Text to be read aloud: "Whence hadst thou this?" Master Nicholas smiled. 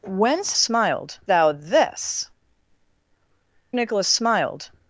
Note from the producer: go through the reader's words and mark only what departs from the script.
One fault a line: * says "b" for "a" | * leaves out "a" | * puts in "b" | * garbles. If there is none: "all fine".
* says "smiled" for "hadst"
* leaves out "Master"